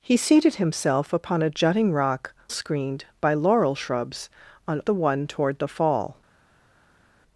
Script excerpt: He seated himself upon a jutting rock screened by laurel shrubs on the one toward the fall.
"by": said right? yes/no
yes